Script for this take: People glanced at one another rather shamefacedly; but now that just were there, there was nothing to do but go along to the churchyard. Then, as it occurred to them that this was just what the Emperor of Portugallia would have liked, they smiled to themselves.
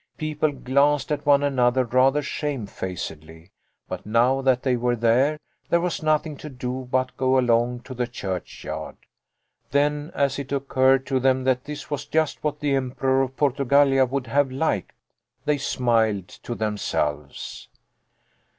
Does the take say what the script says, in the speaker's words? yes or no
no